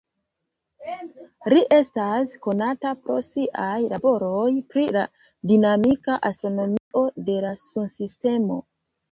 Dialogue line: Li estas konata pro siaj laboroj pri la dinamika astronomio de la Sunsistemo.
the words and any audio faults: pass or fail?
fail